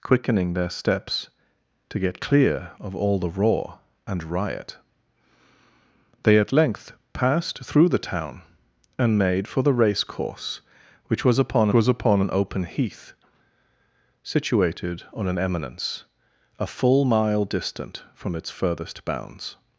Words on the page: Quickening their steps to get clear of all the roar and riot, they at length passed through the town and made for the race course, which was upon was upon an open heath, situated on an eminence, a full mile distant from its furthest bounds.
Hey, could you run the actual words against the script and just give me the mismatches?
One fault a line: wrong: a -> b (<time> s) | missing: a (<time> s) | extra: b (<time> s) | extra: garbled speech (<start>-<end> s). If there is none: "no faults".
no faults